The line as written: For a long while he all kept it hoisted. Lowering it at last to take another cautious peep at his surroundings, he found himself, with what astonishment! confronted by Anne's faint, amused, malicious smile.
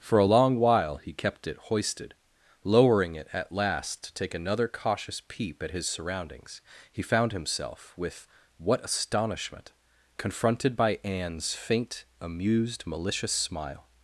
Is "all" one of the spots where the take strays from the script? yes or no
yes